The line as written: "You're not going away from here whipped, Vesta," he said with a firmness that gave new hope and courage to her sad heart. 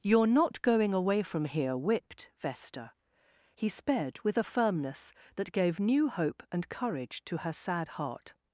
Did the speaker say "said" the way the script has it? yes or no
no